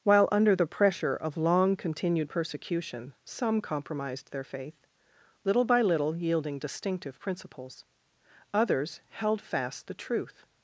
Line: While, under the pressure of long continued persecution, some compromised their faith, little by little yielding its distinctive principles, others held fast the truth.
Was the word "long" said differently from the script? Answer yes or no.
no